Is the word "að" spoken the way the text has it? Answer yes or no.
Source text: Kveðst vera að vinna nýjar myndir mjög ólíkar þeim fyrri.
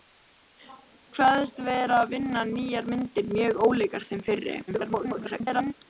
yes